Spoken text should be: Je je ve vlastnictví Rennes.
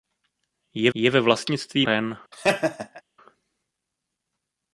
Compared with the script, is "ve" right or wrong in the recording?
right